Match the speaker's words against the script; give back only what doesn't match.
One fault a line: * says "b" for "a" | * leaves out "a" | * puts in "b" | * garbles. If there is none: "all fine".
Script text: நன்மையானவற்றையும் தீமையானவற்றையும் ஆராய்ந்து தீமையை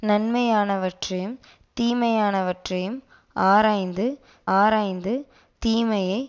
* puts in "ஆராய்ந்து"